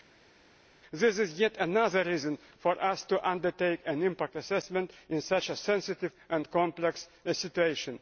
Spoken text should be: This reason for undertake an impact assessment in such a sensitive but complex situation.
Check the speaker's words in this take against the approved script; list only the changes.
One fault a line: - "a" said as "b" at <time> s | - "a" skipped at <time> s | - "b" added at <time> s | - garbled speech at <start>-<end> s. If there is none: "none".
- "is yet another" added at 1.2 s
- "us to" added at 2.8 s
- "but" said as "and" at 6.3 s